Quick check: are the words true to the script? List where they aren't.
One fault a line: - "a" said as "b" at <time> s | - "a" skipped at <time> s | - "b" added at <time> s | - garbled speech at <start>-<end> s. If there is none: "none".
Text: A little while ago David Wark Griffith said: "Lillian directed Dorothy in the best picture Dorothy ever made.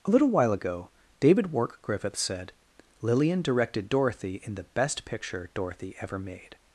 none